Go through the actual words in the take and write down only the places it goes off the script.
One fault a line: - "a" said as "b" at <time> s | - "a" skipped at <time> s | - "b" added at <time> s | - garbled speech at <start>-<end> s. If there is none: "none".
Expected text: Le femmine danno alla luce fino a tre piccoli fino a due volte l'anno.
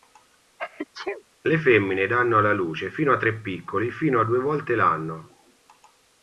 none